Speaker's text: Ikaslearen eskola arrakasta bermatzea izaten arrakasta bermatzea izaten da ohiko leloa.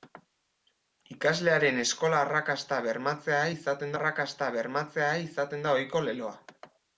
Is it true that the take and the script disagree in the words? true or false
false